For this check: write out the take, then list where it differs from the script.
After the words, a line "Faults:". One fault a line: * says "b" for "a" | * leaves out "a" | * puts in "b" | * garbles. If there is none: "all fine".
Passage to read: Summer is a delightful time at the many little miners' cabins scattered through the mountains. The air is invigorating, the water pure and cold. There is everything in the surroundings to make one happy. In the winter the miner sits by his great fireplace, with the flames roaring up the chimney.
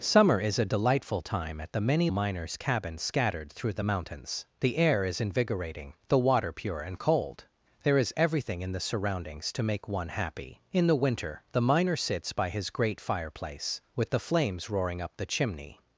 Summer is a delightful time at the many miners' cabins scattered through the mountains. The air is invigorating, the water pure and cold. There is everything in the surroundings to make one happy. In the winter the miner sits by his great fireplace, with the flames roaring up the chimney.
Faults:
* leaves out "little"